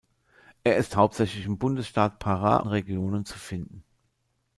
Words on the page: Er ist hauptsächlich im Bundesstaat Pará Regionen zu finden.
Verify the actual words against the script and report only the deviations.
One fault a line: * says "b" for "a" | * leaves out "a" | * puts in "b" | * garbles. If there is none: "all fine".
all fine